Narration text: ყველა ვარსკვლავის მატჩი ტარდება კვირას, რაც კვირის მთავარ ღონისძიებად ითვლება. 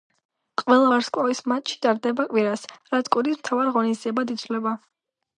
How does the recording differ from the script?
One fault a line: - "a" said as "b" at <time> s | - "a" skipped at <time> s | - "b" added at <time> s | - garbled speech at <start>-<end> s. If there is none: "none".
none